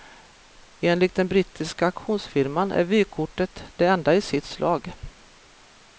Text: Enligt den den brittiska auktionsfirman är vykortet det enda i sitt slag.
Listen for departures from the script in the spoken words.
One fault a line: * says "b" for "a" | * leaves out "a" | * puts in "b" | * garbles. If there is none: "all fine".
* leaves out "den"